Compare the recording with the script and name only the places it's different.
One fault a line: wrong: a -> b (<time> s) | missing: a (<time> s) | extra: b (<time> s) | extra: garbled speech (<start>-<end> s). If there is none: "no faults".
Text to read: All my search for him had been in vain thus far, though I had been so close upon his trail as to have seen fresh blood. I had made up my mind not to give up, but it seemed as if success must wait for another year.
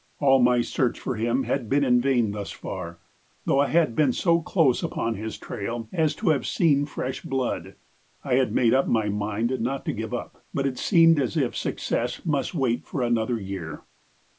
no faults